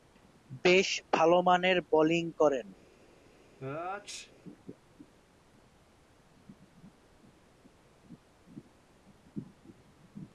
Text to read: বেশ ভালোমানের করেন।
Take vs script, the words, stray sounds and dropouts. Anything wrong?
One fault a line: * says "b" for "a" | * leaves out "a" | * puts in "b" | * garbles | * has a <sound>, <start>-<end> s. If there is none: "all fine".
* puts in "বোলিং"
* has a sneeze, 3.6-4.3 s